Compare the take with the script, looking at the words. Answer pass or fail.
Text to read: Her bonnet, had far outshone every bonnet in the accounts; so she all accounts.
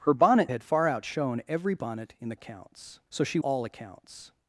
pass